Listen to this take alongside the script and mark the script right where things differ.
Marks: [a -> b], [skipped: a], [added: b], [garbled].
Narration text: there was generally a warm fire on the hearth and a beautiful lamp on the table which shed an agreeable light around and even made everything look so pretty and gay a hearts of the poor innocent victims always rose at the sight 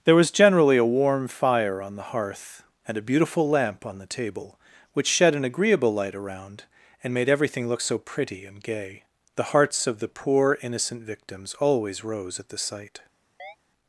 there was generally a warm fire on the hearth and a beautiful lamp on the table which shed an agreeable light around and [skipped: even] made everything look so pretty and gay [a -> the] hearts of the poor innocent victims always rose at the sight